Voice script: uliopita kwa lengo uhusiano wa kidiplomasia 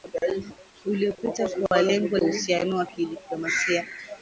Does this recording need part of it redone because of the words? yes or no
no